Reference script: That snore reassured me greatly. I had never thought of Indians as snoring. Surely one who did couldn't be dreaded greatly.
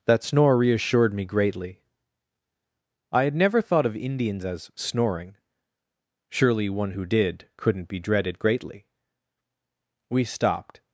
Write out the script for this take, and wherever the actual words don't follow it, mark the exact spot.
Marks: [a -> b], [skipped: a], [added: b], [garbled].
That snore reassured me greatly. I had never thought of Indians as snoring. Surely one who did couldn't be dreaded greatly. [added: We stopped]